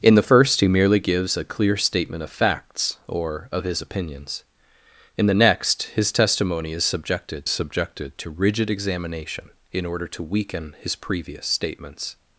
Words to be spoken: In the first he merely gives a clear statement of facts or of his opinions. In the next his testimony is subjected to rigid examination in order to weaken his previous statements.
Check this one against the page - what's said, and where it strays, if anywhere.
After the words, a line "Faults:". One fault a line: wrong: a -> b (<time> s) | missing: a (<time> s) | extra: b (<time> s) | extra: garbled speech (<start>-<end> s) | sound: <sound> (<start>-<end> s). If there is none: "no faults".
In the first he merely gives a clear statement of facts or of his opinions. In the next his testimony is subjected subjected to rigid examination in order to weaken his previous statements.
Faults:
extra: subjected (7.5 s)